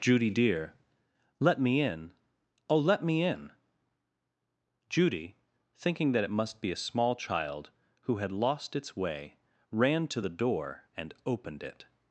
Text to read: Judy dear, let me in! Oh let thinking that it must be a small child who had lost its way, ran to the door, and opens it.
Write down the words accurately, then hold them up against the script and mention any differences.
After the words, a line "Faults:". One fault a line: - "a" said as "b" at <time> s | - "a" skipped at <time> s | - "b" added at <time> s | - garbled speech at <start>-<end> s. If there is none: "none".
Judy dear, let me in! Oh let me in!" Judy, thinking that it must be a small child who had lost its way, ran to the door, and opened it.
Faults:
- "me in Judy" added at 3.0 s
- "opens" said as "opened" at 11.2 s